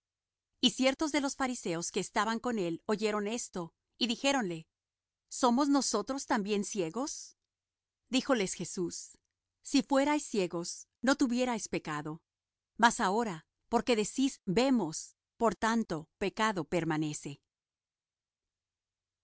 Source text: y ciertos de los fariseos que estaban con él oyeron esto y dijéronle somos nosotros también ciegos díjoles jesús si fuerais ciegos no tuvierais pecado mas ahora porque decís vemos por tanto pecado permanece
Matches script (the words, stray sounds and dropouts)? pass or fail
pass